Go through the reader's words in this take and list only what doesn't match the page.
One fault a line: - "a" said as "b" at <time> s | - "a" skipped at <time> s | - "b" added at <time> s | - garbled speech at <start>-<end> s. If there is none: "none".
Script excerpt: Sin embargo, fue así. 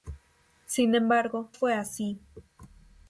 none